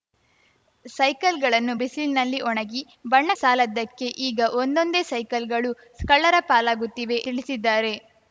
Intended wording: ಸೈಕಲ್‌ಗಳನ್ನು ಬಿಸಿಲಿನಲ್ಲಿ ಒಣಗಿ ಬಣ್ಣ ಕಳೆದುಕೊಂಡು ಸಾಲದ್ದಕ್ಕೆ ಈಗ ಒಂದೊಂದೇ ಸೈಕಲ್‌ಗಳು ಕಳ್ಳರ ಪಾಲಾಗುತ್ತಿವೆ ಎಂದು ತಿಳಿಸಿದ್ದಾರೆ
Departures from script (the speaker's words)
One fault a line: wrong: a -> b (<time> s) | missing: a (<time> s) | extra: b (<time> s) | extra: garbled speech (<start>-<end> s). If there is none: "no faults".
missing: ಕಳೆದುಕೊಂಡು (3.3 s)
missing: ಎಂದು (7.2 s)